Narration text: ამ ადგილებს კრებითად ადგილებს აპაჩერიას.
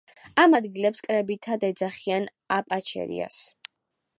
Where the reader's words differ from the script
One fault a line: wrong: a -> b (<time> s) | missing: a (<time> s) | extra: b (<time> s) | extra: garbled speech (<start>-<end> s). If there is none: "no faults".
wrong: ადგილებს -> ეძახიან (1.7 s)